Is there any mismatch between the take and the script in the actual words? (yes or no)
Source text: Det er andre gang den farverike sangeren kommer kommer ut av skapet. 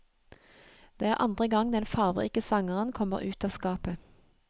yes